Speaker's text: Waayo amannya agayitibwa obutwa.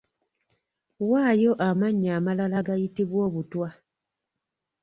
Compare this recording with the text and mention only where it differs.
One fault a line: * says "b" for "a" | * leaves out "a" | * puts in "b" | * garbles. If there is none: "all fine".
* puts in "amalala"